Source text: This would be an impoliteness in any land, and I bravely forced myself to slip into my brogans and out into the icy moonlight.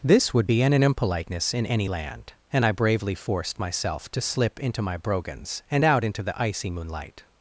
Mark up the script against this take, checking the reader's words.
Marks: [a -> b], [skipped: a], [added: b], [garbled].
This would be an [added: an] impoliteness in any land, and I bravely forced myself to slip into my brogans and out into the icy moonlight.